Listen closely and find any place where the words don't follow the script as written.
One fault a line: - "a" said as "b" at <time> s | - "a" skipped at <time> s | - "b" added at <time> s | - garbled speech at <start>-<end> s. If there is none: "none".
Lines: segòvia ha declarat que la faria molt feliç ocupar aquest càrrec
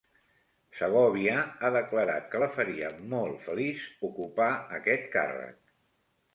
none